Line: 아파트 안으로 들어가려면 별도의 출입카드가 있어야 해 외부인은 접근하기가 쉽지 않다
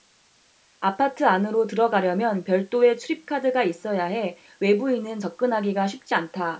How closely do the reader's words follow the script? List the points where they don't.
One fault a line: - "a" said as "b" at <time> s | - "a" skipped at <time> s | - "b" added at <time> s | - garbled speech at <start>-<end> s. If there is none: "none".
none